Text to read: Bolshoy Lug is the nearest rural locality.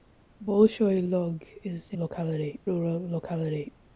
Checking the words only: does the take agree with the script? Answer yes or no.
no